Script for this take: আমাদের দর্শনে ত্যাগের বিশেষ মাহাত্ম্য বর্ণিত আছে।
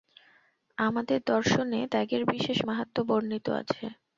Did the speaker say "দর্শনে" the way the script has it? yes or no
yes